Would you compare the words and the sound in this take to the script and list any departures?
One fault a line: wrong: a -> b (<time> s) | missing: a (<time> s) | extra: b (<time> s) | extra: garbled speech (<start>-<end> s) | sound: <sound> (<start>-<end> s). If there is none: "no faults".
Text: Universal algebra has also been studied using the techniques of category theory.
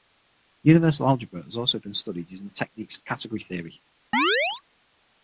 sound: chirp (4.1-4.6 s)